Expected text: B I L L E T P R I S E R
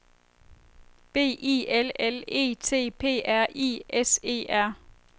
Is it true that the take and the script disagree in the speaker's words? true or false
false